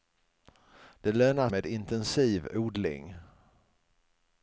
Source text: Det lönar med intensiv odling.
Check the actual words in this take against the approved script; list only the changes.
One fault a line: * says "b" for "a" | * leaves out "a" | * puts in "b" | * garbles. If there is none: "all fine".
all fine